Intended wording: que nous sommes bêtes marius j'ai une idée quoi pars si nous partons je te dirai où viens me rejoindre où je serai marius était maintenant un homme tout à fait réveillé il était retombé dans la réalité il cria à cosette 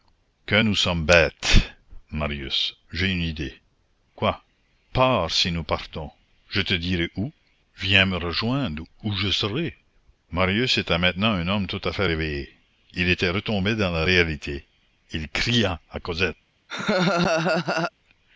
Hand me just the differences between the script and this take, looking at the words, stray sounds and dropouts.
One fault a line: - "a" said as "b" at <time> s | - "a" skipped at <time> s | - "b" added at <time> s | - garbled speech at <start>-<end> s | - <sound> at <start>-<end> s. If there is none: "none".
- laugh at 16.7-17.9 s